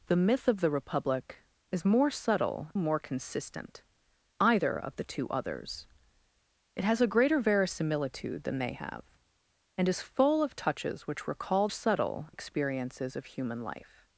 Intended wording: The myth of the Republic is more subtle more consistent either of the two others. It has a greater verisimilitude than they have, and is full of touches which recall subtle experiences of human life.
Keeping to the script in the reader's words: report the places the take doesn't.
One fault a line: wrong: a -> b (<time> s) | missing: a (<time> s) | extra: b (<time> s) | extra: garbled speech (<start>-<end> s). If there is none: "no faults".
no faults